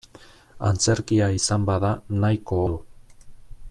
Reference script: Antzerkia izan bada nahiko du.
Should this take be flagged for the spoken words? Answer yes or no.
no